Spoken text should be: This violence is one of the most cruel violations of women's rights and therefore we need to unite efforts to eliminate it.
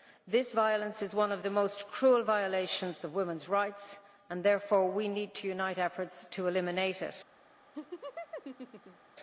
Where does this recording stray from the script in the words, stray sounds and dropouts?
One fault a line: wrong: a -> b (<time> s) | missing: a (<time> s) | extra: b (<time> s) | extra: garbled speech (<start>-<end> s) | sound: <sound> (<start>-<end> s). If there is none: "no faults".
sound: laugh (7.7-9.1 s)